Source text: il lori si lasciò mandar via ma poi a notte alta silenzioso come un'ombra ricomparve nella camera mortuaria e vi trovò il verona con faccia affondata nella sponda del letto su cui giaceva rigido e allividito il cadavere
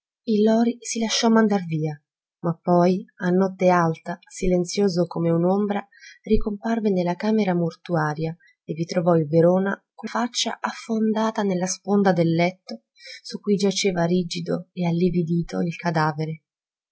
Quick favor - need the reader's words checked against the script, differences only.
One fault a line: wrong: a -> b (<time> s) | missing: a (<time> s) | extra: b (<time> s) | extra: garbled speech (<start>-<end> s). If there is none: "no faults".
no faults